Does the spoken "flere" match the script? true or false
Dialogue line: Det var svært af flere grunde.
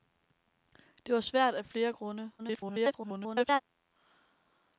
true